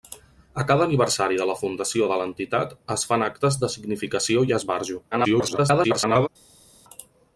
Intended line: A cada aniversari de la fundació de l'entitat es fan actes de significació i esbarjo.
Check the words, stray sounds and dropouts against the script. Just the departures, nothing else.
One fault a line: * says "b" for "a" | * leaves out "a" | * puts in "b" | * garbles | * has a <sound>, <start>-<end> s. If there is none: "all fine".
* garbles